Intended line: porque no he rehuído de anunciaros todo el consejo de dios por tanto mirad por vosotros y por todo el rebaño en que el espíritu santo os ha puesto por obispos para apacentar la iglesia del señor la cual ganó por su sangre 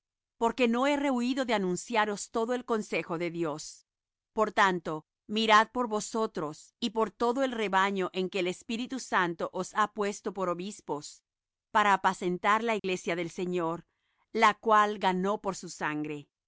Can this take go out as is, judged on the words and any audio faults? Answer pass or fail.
fail